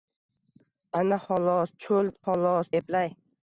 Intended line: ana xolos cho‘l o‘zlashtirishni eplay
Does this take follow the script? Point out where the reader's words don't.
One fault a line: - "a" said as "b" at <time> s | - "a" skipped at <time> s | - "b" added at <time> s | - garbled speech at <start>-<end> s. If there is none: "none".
- "o‘zlashtirishni" said as "xolos" at 2.2 s